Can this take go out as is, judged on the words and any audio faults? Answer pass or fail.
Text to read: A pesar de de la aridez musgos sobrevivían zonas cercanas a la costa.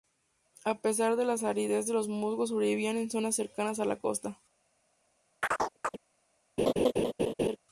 fail